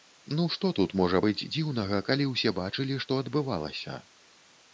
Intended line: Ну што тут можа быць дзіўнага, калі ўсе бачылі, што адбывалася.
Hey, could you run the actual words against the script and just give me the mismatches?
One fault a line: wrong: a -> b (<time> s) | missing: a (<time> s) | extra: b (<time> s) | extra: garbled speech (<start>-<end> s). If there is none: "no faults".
no faults